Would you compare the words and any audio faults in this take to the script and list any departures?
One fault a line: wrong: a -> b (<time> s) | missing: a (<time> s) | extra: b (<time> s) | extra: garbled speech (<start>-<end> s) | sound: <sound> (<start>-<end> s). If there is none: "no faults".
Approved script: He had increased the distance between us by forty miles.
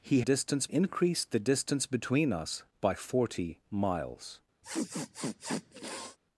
wrong: had -> distance (0.2 s)
sound: sniff (4.6-6.2 s)